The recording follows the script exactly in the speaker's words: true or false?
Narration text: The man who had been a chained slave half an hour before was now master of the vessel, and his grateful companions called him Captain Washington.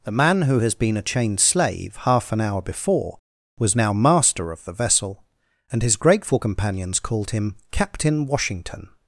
false